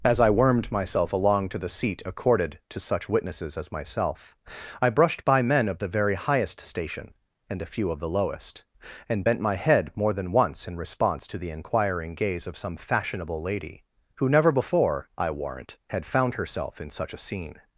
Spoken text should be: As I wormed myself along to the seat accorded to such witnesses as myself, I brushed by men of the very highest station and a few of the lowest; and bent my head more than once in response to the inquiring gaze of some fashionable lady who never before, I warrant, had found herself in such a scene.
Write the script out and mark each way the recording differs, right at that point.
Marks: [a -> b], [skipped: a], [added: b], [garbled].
As I wormed myself along to the seat accorded to such witnesses as myself, I brushed by men of the very highest station and a few of the lowest; and bent my head more than once in response to the inquiring gaze of some fashionable lady who never before, I warrant, had found herself in such a scene.